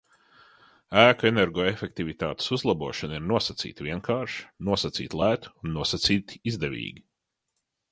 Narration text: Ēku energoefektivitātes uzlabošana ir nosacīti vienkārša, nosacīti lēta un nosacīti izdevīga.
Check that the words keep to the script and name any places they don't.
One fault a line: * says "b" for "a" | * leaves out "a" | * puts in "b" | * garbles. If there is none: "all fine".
all fine